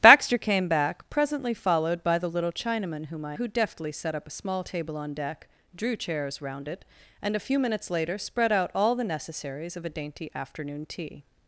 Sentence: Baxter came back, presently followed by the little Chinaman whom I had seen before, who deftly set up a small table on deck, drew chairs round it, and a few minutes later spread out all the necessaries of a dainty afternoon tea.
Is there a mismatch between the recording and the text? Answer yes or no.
yes